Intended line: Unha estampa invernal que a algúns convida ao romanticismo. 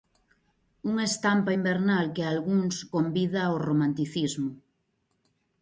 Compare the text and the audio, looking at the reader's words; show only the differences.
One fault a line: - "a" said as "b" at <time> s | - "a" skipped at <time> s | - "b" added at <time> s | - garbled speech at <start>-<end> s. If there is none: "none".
none